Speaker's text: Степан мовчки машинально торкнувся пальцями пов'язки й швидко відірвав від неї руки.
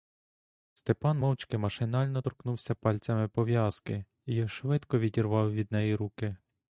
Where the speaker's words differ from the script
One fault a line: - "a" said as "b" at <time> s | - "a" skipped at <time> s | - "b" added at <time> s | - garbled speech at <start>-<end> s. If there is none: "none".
none